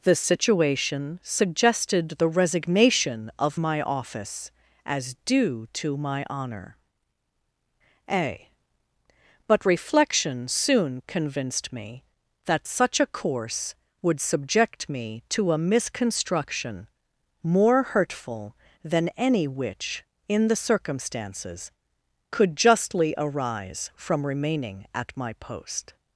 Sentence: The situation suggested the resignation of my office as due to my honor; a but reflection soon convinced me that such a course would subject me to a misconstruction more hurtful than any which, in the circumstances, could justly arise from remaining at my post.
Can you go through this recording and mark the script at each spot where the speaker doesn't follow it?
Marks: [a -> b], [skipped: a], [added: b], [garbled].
The situation suggested the resignation of my office as due to my honor; a but reflection soon convinced me that such a course would subject me to a misconstruction more hurtful than any which, in the circumstances, could justly arise from remaining at my post.